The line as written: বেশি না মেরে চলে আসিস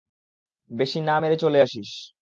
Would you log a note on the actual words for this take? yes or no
no